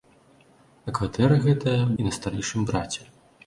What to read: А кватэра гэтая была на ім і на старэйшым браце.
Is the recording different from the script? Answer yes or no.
yes